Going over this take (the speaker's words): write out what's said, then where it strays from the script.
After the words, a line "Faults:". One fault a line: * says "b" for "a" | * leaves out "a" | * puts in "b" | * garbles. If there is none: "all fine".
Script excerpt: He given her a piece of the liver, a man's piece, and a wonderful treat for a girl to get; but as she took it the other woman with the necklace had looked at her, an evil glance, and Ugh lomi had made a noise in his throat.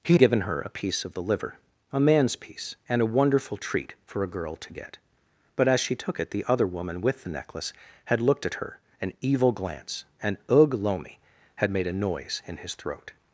He given her a piece of the liver, a man's piece, and a wonderful treat for a girl to get; but as she took it the other woman with the necklace had looked at her, an evil glance, and Ugh lomi had made a noise in his throat.
Faults:
all fine